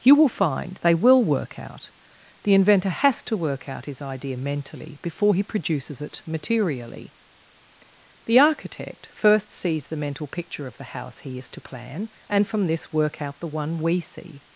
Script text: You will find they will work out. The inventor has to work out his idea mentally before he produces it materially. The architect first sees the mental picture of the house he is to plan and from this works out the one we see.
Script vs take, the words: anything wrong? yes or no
yes